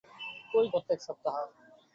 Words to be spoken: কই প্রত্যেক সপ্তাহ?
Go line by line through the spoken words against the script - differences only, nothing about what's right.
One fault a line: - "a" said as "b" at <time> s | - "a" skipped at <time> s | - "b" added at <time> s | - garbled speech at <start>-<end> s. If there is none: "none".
none